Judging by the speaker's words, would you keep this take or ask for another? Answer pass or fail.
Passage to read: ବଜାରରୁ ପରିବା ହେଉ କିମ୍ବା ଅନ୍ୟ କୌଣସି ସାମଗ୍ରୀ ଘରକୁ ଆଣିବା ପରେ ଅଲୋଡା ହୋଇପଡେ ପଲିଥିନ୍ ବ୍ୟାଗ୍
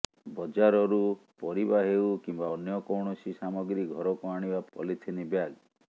fail